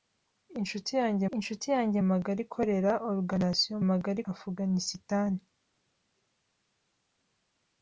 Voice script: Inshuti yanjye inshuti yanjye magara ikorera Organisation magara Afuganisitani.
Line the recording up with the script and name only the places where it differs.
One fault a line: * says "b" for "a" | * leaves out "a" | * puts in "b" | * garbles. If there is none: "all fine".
all fine